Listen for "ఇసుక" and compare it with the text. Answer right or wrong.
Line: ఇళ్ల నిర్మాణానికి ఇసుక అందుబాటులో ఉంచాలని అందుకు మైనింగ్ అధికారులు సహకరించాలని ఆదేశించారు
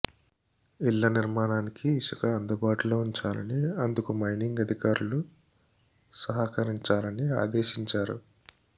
right